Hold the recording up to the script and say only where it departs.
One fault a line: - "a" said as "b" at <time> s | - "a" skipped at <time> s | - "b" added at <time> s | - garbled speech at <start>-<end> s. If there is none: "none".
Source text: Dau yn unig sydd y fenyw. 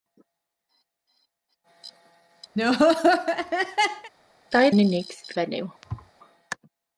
none